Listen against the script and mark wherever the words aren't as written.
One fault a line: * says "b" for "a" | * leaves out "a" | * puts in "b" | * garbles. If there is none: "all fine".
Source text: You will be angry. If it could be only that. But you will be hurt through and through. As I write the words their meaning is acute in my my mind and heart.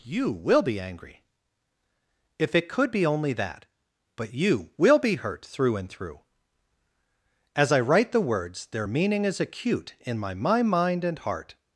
all fine